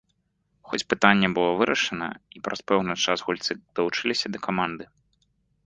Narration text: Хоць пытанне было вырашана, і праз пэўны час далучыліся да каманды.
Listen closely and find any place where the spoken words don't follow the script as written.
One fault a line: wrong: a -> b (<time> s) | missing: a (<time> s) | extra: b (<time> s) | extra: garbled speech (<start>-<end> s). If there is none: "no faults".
extra: гульцы (3.3 s)